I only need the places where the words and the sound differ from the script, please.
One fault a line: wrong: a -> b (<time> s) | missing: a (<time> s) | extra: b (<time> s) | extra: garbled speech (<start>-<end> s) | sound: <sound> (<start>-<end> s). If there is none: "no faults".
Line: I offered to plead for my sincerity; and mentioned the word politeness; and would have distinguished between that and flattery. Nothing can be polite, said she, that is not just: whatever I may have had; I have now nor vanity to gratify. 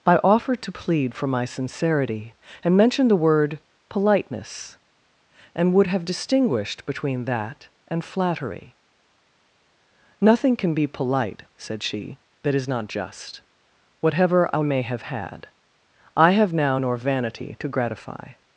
no faults